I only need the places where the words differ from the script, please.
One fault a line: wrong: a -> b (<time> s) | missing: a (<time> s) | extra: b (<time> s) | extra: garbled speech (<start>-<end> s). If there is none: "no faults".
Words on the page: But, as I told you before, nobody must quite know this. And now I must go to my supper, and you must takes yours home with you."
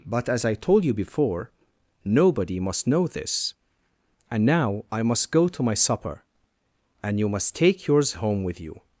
missing: quite (2.9 s)
wrong: takes -> take (7.5 s)